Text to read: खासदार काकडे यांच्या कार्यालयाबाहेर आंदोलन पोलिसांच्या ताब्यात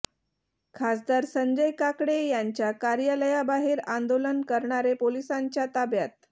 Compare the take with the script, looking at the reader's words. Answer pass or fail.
fail